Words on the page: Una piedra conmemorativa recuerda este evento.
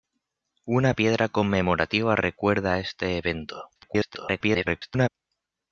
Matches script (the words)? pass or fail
fail